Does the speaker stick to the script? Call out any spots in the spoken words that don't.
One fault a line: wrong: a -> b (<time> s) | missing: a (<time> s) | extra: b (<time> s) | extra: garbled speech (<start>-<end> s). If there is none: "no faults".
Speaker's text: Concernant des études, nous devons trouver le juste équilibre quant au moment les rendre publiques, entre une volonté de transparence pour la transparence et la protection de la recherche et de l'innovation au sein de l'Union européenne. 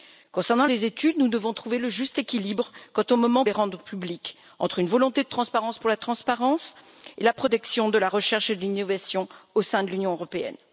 no faults